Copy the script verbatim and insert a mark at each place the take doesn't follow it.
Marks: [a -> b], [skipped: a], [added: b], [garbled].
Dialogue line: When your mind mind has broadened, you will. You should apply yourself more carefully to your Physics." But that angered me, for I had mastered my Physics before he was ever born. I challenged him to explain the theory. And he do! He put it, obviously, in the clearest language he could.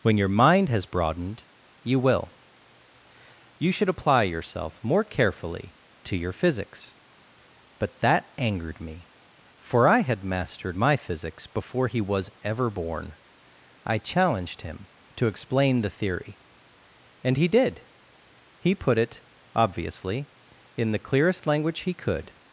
When your mind [skipped: mind] has broadened, you will. You should apply yourself more carefully to your Physics." But that angered me, for I had mastered my Physics before he was ever born. I challenged him to explain the theory. And he [do! -> did] He put it, obviously, in the clearest language he could.